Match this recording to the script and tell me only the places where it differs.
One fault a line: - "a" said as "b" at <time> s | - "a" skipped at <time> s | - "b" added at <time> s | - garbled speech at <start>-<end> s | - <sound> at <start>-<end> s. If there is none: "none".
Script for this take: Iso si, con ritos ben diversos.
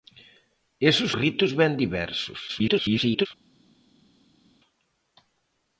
- "si con" skipped at 1.1 s
- garbled speech at 2.5-3.3 s